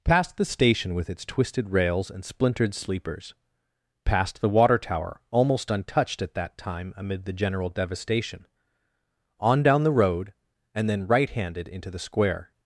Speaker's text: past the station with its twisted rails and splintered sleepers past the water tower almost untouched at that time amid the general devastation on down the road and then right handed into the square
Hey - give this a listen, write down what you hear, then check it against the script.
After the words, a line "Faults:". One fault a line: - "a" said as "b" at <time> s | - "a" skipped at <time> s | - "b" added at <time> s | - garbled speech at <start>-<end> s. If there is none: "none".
past the station with its twisted rails and splintered sleepers past the water tower almost untouched at that time amid the general devastation on down the road and then right handed into the square
Faults:
none